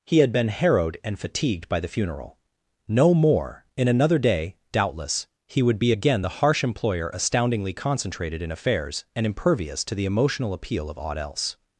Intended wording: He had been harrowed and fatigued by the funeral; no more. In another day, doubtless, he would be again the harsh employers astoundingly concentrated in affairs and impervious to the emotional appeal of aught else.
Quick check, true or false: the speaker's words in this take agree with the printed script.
false